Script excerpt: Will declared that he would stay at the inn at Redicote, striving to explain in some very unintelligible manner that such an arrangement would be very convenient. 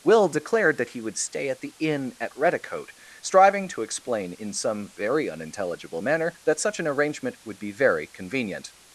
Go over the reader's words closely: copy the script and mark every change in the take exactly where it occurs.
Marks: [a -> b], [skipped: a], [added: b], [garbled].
Will declared that he would stay at the inn at Redicote, striving to explain in some very unintelligible manner that such an arrangement would be very convenient.